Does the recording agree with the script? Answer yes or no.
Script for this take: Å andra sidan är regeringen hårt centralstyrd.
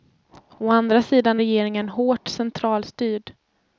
no